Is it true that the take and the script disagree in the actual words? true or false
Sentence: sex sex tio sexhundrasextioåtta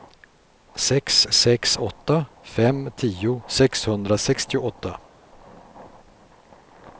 true